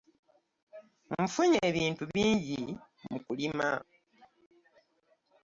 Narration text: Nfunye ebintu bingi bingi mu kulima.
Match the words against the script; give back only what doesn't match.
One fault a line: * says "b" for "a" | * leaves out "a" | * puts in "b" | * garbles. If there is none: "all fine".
* leaves out "bingi"